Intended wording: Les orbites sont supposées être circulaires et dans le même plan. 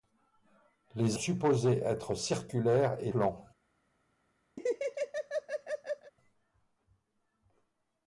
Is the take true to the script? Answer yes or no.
no